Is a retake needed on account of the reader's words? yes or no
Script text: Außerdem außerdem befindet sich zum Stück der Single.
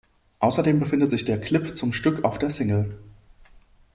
yes